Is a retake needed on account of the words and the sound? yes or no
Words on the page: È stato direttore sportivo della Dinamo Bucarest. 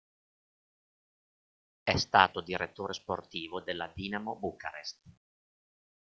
no